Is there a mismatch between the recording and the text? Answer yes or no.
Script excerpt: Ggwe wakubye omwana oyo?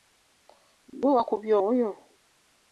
yes